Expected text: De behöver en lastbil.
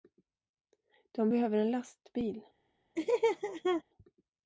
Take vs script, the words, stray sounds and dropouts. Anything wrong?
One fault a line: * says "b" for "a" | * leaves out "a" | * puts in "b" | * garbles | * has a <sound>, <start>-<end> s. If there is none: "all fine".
* has a laugh, 3.0-3.8 s